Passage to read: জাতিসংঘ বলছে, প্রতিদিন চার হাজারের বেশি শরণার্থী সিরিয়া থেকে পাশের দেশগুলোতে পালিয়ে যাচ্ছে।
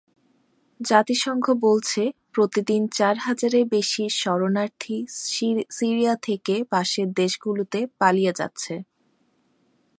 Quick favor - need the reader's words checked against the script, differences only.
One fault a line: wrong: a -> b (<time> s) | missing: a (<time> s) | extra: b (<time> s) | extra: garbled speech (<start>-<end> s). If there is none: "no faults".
no faults